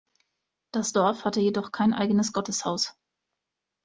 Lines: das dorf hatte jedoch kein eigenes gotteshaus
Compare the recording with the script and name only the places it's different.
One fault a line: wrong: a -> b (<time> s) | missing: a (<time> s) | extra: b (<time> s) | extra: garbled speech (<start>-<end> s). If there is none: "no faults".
no faults